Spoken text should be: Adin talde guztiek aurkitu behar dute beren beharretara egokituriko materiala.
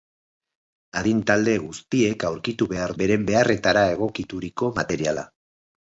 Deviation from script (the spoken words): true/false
true